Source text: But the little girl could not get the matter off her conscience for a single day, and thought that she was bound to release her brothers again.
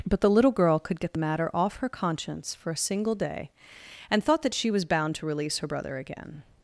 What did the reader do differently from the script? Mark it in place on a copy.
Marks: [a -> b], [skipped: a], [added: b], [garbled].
But the little girl could [skipped: not] get the matter off her conscience for a single day, and thought that she was bound to release her [brothers -> brother] again.